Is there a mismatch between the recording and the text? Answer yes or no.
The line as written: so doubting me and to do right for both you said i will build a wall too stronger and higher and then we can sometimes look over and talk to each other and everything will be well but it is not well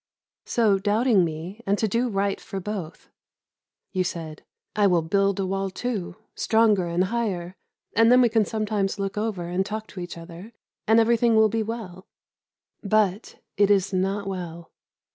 no